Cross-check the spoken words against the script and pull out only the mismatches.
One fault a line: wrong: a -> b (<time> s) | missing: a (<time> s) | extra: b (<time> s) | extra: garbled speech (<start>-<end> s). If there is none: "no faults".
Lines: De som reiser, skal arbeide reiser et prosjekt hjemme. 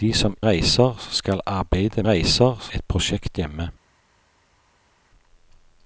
no faults